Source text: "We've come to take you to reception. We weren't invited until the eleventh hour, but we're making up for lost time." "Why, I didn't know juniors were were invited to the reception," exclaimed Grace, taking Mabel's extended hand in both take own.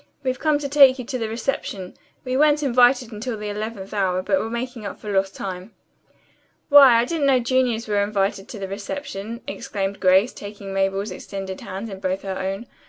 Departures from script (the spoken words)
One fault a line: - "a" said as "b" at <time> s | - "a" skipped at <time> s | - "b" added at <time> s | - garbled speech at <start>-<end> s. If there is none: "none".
- "the" added at 1.2 s
- "were" skipped at 8.0 s
- "take" said as "her" at 12.2 s